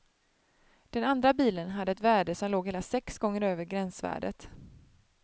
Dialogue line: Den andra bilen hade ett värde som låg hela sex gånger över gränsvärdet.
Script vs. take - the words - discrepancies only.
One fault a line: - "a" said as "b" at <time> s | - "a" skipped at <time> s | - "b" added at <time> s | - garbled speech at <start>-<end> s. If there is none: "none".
none